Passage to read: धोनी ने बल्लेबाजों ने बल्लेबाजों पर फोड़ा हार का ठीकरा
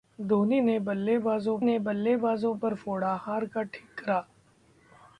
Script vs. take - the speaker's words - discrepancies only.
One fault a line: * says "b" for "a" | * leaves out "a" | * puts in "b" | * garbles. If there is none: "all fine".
all fine